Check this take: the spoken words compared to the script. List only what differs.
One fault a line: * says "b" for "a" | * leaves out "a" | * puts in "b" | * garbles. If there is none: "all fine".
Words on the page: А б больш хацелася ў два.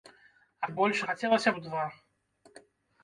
all fine